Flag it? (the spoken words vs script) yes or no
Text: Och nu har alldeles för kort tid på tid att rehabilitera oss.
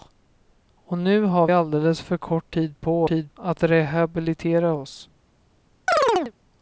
no